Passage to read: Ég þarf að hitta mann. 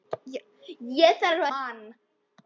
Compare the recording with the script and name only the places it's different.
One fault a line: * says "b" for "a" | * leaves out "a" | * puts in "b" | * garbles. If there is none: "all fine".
* leaves out "að hitta"